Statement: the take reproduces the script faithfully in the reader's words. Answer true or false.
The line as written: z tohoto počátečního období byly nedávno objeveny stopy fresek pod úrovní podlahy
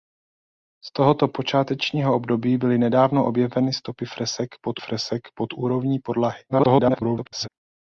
false